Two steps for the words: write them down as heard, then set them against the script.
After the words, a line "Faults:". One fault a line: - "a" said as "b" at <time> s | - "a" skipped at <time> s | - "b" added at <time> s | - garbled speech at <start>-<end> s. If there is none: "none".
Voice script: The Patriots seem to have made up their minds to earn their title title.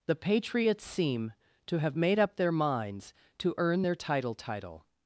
The Patriots seem to have made up their minds to earn their title title.
Faults:
none